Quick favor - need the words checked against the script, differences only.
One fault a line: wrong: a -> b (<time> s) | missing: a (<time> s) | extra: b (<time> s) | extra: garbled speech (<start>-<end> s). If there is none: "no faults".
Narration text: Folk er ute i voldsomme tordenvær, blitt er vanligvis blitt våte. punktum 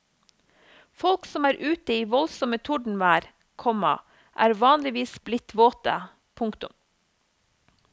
extra: som (1.3 s)
wrong: blitt -> komma (3.6 s)